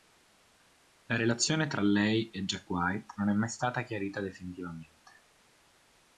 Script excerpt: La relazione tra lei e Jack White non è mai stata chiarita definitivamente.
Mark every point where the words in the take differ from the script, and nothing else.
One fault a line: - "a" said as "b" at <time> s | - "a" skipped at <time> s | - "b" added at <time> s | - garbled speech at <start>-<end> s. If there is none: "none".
none